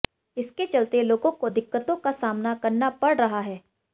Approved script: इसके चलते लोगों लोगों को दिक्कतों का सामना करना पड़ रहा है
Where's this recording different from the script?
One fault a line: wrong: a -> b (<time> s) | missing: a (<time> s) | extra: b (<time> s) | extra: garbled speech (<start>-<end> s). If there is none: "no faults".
missing: लोगों (1.3 s)